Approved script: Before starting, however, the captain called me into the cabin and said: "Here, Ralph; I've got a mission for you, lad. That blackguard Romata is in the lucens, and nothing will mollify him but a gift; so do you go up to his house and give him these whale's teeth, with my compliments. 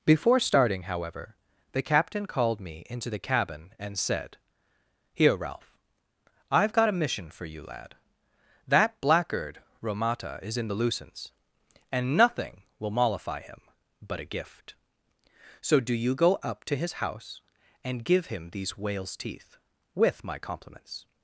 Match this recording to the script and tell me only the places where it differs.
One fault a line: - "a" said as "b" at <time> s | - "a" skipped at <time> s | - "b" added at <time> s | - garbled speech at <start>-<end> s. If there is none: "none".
none